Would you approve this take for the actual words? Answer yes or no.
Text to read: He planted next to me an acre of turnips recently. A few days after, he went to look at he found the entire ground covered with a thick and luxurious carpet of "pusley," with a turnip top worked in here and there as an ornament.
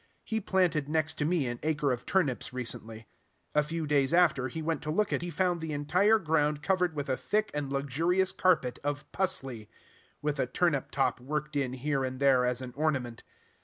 yes